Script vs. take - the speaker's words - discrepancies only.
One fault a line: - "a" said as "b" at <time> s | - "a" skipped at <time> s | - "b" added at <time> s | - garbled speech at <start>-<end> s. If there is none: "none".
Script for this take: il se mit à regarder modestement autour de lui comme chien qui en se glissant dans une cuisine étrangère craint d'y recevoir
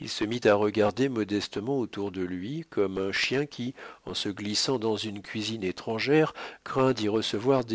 - "un" added at 3.0 s